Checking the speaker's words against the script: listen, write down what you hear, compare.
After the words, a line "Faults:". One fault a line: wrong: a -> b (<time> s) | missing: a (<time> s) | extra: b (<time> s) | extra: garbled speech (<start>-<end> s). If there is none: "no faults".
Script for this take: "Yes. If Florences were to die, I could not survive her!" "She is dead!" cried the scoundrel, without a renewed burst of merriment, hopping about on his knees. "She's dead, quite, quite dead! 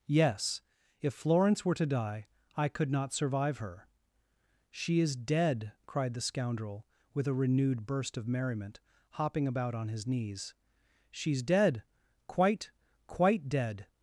"Yes. If Florence were to die, I could not survive her!" "She is dead!" cried the scoundrel, with a renewed burst of merriment, hopping about on his knees. "She's dead, quite, quite dead!
Faults:
wrong: Florences -> Florence (1.1 s)
wrong: without -> with (7.1 s)